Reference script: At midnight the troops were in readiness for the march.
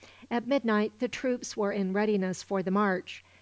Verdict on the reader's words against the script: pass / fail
pass